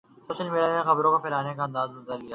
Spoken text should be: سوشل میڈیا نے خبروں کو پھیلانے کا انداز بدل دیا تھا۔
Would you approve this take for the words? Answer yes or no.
no